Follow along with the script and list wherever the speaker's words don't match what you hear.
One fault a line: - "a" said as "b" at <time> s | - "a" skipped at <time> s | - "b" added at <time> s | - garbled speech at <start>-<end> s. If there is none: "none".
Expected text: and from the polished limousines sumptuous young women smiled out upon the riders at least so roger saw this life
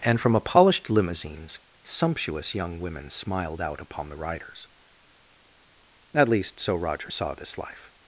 - "the" said as "a" at 0.3 s